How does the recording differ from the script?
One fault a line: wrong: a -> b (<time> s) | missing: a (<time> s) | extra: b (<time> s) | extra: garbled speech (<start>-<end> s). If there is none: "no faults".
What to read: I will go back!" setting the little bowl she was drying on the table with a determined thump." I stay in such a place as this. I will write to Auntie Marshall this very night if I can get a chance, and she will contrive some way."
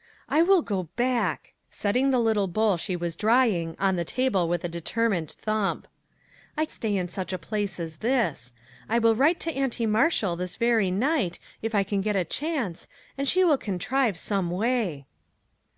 no faults